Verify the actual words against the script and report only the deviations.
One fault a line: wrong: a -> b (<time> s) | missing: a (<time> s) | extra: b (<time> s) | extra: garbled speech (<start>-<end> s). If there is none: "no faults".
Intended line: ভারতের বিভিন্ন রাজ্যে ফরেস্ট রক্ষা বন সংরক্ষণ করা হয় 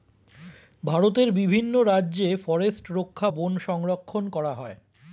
no faults